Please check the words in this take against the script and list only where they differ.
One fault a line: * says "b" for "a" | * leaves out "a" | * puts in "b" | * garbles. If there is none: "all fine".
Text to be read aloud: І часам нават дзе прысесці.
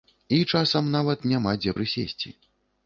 * puts in "няма"